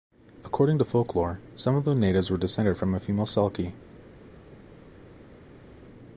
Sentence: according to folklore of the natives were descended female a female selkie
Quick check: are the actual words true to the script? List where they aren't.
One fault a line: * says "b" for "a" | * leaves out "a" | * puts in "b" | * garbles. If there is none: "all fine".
* puts in "some"
* says "from" for "female"